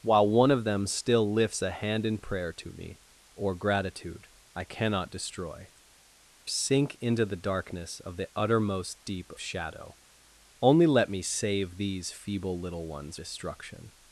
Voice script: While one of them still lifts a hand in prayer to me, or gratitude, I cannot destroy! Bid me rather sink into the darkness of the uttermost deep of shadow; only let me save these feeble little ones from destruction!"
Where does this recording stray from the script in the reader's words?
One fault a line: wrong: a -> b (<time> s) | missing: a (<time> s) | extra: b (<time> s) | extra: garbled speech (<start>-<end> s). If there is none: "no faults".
missing: Bid me rather (5.7 s)
missing: of (9.3 s)
missing: from (13.2 s)